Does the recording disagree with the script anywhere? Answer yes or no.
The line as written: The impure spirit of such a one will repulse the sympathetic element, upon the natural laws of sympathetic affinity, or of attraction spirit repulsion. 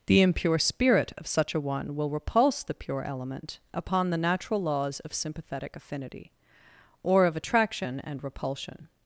yes